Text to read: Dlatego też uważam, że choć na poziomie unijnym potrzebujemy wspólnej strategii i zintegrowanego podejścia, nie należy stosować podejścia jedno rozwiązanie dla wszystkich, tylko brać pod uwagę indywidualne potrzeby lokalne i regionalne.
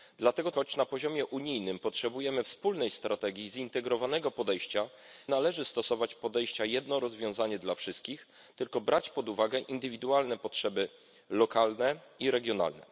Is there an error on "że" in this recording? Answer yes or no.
yes